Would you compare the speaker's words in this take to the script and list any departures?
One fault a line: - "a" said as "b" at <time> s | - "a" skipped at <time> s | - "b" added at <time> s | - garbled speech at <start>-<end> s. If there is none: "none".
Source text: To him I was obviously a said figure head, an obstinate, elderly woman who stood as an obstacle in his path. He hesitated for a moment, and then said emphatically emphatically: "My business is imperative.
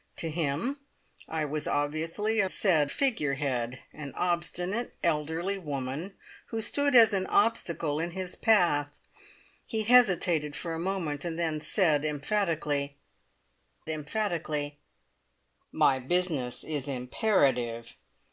none